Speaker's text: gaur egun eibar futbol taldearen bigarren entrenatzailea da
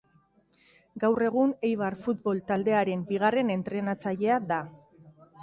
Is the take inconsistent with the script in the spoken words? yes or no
no